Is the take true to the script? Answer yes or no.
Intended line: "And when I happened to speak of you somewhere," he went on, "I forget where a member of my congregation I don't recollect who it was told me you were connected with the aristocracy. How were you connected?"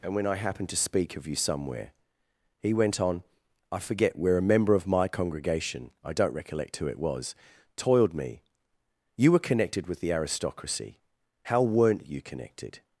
no